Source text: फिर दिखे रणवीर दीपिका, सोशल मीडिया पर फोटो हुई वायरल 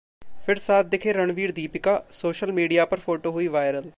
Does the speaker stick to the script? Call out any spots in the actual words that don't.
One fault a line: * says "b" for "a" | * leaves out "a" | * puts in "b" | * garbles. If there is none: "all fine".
* puts in "साथ"